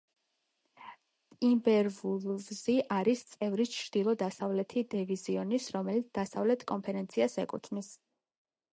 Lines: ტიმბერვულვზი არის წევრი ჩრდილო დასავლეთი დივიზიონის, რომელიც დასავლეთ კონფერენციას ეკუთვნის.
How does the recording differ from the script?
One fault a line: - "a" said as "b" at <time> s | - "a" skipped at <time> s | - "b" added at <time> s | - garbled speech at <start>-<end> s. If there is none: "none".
none